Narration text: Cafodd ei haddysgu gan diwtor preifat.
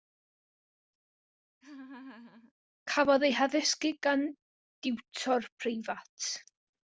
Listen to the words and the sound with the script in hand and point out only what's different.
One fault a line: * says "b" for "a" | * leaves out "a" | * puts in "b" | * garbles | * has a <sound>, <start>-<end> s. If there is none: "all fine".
* has a laugh, 1.6-2.5 s